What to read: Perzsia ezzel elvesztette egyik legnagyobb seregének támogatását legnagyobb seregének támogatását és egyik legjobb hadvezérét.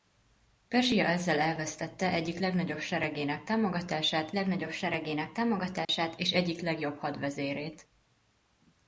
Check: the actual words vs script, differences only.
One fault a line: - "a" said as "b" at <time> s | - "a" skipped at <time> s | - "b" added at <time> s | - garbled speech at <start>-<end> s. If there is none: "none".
none